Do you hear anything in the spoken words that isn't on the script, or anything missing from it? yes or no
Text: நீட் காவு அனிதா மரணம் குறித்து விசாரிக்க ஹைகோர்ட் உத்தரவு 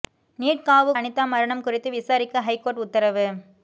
no